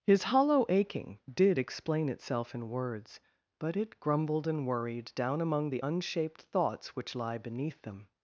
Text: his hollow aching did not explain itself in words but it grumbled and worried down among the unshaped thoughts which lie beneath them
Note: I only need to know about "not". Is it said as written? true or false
false